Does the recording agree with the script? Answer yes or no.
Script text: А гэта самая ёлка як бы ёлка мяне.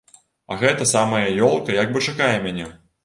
no